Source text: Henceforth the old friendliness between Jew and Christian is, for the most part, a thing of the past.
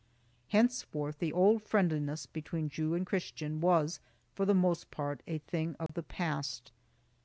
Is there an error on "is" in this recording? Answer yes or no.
yes